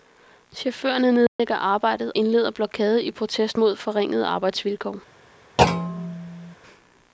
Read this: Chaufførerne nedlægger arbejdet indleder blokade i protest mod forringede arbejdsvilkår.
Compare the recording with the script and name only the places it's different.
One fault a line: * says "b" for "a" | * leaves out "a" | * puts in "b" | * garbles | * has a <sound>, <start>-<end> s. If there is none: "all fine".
* has a dropout, 1.3-1.4 s
* has a thud, 5.6-6.5 s